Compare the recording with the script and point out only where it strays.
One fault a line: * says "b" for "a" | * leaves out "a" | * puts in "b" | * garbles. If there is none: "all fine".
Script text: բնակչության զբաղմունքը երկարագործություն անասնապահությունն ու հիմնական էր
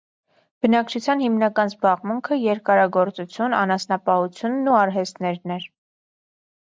* puts in "հիմնական"
* says "արհեստներն" for "հիմնական"